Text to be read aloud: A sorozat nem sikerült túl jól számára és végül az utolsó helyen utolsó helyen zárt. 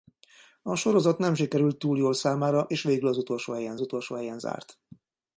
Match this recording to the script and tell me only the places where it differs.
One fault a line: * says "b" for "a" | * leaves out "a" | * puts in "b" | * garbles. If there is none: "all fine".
all fine